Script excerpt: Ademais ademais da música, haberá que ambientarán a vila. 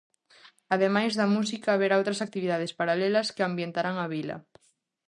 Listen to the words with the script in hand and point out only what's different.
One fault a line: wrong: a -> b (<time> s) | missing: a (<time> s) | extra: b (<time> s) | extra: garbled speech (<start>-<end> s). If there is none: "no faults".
missing: ademais (1.1 s)
extra: outras actividades paralelas (2.0 s)